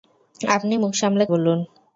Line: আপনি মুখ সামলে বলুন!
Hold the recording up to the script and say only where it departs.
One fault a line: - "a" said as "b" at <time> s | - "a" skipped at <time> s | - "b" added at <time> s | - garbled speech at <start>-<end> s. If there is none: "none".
none